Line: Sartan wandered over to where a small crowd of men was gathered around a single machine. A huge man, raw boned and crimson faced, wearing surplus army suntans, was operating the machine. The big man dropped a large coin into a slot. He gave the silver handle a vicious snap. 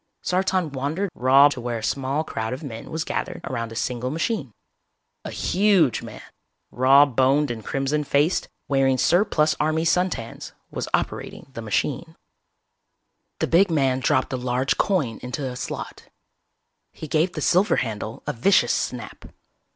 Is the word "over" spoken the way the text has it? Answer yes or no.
no